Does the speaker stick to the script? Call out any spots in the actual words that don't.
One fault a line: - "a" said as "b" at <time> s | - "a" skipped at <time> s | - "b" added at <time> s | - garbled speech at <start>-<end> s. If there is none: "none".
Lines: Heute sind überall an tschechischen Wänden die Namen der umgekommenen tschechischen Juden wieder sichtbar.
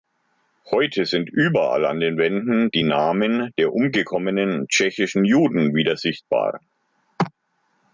- "tschechischen" said as "den" at 2.0 s